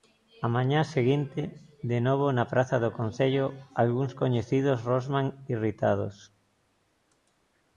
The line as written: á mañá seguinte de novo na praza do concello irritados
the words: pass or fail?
fail